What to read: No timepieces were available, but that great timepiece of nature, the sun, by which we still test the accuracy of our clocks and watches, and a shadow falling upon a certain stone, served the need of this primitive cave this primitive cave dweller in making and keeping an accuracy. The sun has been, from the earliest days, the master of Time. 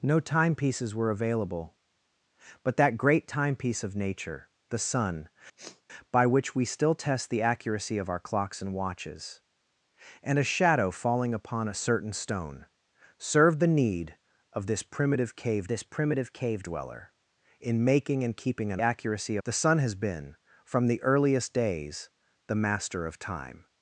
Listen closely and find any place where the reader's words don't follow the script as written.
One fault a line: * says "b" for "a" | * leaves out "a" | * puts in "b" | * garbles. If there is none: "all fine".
all fine